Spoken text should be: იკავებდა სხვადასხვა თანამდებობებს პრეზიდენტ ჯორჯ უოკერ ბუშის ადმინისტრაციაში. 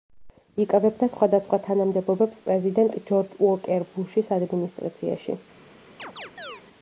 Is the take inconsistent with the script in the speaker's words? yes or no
no